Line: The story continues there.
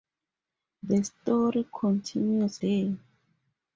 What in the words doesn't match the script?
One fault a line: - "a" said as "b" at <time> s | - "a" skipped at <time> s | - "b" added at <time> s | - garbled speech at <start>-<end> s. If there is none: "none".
none